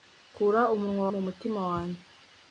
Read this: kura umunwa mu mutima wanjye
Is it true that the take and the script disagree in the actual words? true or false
false